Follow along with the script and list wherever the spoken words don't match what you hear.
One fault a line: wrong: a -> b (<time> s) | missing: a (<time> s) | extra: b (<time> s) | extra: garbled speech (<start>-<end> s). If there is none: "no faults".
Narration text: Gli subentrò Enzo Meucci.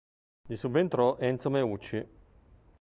no faults